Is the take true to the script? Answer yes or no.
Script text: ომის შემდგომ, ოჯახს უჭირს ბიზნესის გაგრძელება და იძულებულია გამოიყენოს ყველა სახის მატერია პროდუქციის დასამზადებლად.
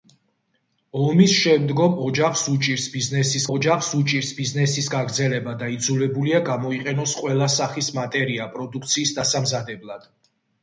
no